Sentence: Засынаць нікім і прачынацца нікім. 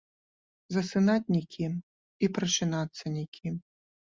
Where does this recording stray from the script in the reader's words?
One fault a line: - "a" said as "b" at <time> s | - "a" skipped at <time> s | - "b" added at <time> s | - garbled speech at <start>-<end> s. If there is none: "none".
none